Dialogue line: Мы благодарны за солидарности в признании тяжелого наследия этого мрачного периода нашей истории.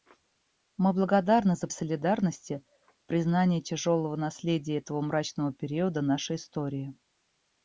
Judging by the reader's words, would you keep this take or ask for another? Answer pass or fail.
pass